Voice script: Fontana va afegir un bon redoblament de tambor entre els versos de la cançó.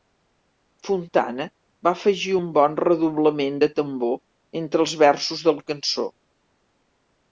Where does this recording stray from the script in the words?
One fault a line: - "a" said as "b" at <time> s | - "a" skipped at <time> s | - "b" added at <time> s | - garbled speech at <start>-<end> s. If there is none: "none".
none